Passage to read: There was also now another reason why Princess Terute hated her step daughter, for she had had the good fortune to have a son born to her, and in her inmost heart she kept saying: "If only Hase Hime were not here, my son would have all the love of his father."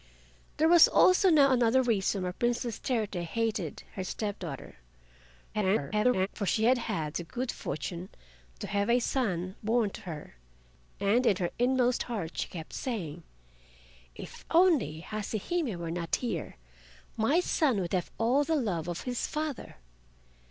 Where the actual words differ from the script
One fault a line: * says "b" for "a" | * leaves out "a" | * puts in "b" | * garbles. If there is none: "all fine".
* garbles